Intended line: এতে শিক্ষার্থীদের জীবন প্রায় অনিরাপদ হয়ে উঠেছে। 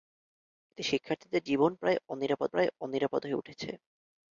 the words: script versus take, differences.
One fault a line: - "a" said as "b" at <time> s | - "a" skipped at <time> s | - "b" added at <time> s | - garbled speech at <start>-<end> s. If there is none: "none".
- "প্রায় অনিরাপদ" added at 2.5 s